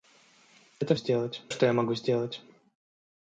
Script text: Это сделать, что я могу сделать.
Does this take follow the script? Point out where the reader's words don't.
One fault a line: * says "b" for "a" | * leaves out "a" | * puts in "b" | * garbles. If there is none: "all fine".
all fine